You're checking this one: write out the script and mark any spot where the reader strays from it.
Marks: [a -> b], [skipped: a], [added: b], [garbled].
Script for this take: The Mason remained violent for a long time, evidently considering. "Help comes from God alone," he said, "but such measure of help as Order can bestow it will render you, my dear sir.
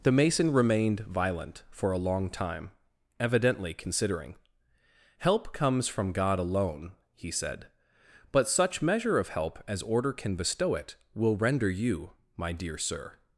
The Mason remained violent for a long time, evidently considering. "Help comes from God alone," he said, "but such measure of help as Order can bestow it will render you, my dear sir.